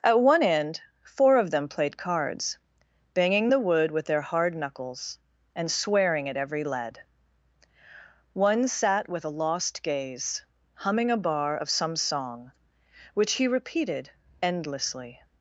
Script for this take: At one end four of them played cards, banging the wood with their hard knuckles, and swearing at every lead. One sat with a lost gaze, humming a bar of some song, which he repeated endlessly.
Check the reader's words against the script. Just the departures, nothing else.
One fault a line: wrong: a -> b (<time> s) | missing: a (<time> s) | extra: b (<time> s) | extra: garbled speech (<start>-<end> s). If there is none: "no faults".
no faults